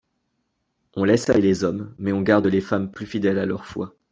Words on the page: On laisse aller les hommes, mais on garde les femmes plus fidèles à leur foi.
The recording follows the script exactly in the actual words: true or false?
true